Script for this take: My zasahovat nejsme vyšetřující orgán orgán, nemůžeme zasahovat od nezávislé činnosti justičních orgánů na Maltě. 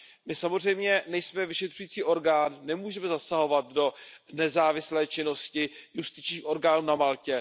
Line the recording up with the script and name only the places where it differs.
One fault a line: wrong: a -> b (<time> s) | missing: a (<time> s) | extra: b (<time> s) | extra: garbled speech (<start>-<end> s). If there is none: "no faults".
wrong: zasahovat -> samozřejmě (0.3 s)
missing: orgán (2.6 s)
wrong: od -> do (3.7 s)